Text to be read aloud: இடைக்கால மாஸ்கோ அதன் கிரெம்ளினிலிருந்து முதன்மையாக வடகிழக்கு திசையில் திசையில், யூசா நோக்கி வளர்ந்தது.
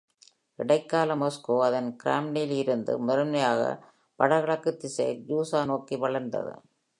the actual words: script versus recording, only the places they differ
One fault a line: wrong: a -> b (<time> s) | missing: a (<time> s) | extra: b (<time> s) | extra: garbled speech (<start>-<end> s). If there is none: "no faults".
missing: திசையில் (5.2 s)